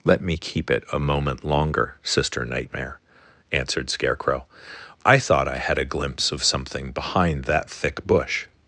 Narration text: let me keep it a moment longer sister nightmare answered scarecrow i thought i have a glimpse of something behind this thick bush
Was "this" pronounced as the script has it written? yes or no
no